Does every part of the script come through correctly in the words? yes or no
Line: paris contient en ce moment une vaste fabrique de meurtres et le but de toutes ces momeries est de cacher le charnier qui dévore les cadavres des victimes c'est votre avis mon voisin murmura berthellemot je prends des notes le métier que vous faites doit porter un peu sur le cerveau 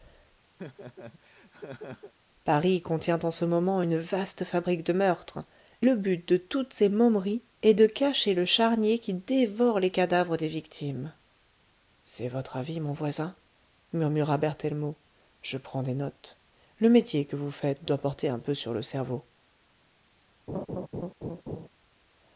no